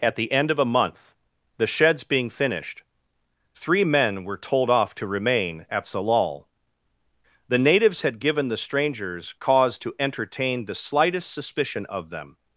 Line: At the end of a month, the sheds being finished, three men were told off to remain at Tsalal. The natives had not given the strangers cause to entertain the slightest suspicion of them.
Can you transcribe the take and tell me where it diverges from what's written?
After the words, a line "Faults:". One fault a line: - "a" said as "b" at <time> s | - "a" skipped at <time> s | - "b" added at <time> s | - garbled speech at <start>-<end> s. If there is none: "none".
At the end of a month, the sheds being finished, three men were told off to remain at Tsalal. The natives had given the strangers cause to entertain the slightest suspicion of them.
Faults:
- "not" skipped at 8.2 s